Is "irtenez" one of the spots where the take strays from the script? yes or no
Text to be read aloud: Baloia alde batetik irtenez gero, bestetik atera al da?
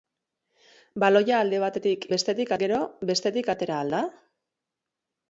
yes